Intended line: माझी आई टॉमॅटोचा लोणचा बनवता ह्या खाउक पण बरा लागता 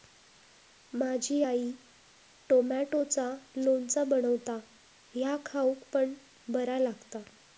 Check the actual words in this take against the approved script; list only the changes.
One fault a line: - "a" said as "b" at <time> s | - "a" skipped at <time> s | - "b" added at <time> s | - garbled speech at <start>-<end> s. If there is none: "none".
none